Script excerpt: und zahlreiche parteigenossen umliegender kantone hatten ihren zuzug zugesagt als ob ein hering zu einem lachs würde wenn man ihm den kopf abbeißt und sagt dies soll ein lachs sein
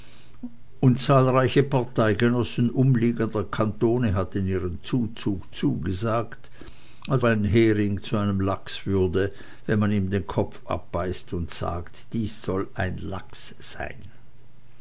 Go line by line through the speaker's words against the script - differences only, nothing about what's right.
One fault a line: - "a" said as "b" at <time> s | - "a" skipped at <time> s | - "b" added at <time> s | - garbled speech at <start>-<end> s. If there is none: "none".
- "ob" skipped at 7.2 s